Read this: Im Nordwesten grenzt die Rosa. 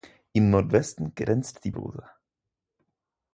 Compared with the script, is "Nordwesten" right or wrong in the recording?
right